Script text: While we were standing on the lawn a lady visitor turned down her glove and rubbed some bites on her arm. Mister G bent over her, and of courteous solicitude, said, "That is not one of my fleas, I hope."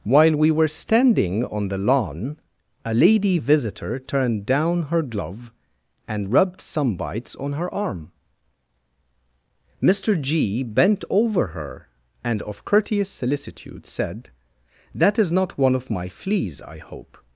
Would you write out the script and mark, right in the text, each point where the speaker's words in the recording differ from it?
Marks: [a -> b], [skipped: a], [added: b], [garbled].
While we were standing on the lawn a lady visitor turned down her glove and rubbed some bites on her arm. Mister G bent over her, and of courteous solicitude, said, "That is not one of my fleas, I hope."